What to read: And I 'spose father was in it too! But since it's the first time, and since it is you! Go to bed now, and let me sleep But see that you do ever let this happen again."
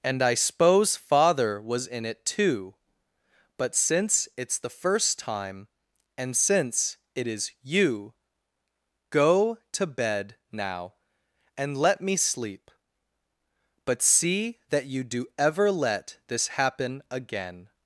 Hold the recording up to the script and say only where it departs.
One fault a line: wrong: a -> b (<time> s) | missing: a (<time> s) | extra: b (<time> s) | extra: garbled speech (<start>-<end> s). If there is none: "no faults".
no faults